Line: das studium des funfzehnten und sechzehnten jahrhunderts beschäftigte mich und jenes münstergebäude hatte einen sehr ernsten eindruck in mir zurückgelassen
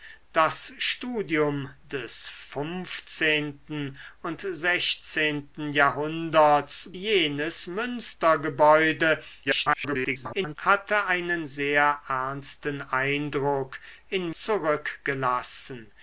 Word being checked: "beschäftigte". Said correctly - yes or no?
no